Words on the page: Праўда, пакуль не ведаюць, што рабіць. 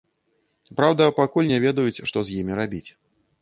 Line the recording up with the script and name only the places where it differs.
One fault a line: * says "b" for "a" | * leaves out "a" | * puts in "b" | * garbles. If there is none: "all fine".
* puts in "з імі"